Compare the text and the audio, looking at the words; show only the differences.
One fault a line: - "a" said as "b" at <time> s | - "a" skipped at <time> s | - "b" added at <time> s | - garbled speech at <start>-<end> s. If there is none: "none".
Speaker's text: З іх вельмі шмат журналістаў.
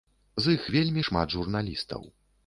none